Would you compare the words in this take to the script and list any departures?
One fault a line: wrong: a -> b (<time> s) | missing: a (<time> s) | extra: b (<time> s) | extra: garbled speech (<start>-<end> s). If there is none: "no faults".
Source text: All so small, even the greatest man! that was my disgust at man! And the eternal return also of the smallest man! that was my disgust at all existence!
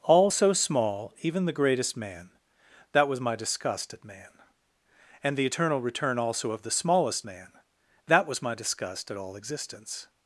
no faults